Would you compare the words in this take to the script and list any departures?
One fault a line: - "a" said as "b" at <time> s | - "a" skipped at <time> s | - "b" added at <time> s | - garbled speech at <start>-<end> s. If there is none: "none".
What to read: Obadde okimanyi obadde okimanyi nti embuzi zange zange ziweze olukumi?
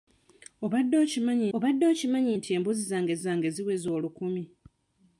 none